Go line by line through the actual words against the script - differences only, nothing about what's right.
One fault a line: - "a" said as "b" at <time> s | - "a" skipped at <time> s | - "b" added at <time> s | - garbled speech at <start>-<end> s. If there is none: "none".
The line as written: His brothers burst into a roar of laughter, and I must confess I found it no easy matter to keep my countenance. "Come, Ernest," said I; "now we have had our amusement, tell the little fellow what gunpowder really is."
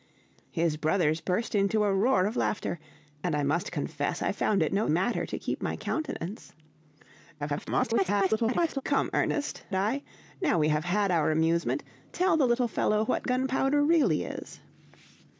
- "easy" skipped at 4.9 s
- garbled speech at 7.4-8.8 s
- "said" skipped at 9.6 s